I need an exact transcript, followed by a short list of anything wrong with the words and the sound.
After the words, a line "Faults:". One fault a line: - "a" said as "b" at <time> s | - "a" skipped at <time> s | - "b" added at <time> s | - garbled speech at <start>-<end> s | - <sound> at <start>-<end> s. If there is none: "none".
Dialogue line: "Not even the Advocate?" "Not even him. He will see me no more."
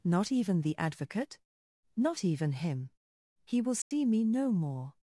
"Not even the Advocate?" "Not even him. He will see me no more."
Faults:
- dropout at 3.8-3.9 s